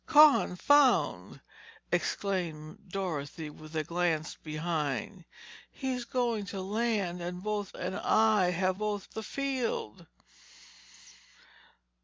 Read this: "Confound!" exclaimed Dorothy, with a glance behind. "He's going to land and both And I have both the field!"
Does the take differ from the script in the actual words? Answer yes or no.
no